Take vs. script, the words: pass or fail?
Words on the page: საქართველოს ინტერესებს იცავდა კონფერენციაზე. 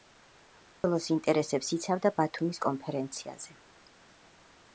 fail